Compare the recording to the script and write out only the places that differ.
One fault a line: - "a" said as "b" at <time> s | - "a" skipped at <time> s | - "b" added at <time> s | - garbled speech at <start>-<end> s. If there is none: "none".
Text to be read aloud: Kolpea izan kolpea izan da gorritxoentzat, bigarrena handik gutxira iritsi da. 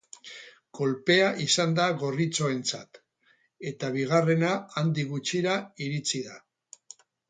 - "kolpea izan" skipped at 1.8 s
- "eta" added at 3.8 s